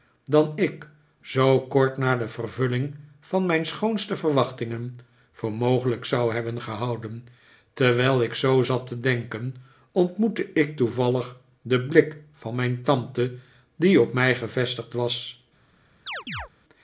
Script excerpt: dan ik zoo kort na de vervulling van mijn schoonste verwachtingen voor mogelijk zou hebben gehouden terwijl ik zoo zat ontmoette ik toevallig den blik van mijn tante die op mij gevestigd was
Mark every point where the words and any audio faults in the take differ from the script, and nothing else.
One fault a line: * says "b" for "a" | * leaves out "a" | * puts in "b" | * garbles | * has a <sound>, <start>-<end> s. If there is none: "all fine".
* puts in "te denken"
* has a chirp, 16.1-16.5 s